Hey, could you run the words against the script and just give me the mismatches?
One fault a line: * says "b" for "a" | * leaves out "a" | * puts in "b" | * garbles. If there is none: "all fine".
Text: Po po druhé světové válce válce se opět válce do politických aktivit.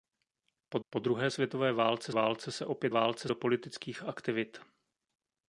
all fine